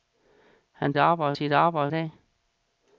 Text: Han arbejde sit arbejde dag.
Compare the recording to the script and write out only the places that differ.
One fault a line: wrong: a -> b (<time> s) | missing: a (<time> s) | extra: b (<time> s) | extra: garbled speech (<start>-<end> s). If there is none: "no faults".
no faults